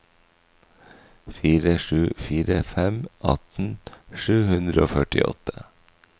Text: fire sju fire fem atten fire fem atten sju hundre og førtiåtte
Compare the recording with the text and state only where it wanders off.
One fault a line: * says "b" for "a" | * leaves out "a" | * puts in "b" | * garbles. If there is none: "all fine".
* leaves out "fire fem atten"